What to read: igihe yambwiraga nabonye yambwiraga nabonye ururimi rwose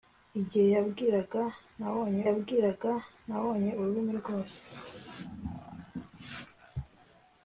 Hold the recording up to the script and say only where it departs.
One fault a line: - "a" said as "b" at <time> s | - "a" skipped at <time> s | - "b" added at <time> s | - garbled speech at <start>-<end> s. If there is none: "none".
none